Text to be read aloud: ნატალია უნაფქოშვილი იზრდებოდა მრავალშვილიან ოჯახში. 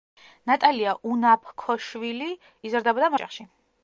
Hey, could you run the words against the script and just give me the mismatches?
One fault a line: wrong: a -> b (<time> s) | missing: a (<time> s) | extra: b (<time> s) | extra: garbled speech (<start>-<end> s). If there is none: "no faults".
missing: მრავალშვილიან (3.1 s)